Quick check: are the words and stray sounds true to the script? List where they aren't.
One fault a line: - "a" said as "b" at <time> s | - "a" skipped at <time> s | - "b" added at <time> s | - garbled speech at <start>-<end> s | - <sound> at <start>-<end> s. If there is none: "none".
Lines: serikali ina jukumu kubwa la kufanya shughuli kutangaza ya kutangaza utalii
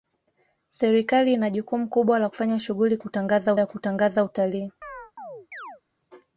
- chirp at 4.8-5.8 s